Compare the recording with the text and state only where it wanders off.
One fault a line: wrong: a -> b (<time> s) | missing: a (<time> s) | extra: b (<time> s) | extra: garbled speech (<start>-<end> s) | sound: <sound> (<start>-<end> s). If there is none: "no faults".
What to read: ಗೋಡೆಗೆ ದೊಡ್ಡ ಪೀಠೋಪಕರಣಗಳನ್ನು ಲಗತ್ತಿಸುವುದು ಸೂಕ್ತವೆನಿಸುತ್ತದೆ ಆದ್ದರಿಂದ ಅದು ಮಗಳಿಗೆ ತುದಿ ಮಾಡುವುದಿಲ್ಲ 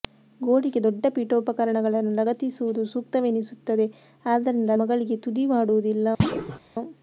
missing: ಅದು (4.7 s)
sound: thud (6.2-6.6 s)